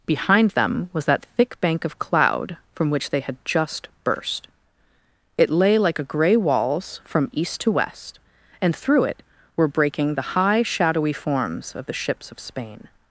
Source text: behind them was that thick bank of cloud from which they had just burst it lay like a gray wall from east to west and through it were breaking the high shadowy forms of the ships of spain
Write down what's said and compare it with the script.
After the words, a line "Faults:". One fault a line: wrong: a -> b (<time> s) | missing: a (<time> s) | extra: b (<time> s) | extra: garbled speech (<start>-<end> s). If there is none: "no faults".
behind them was that thick bank of cloud from which they had just burst it lay like a gray walls from east to west and through it were breaking the high shadowy forms of the ships of spain
Faults:
wrong: wall -> walls (6.3 s)